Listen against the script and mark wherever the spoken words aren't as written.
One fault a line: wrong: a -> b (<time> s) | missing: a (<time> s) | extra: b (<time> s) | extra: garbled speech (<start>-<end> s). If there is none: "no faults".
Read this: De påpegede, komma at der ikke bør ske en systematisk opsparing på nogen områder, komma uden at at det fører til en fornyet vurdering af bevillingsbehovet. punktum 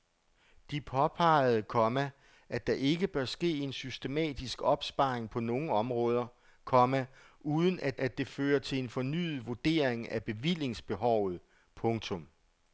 no faults